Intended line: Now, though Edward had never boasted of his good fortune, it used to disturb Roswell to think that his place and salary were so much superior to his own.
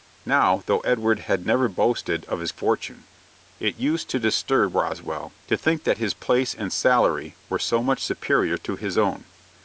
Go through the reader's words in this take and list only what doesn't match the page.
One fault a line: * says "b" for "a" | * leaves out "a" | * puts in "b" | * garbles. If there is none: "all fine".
* leaves out "good"